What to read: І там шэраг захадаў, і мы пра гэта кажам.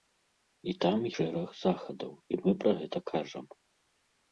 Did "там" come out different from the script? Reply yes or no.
no